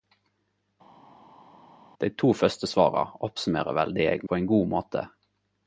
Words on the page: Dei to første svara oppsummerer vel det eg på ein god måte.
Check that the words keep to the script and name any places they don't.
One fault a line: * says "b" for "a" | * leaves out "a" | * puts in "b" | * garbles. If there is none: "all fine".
all fine